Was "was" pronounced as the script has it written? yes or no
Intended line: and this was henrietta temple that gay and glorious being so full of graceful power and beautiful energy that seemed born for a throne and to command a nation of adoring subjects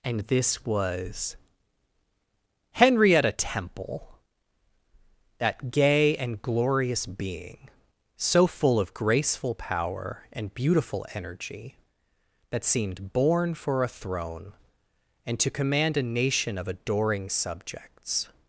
yes